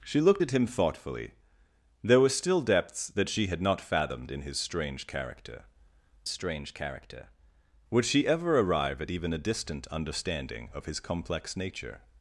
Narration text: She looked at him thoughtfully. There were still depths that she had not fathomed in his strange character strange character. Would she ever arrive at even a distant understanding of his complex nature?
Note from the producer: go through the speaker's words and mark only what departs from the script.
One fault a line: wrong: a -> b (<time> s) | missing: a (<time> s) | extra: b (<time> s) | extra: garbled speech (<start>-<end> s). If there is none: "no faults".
no faults